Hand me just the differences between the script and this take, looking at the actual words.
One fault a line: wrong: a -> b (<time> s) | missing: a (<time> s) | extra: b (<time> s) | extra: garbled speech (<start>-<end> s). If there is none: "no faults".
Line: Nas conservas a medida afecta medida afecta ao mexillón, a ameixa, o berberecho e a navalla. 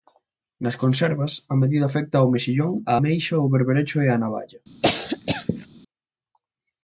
missing: medida afecta (2.1 s)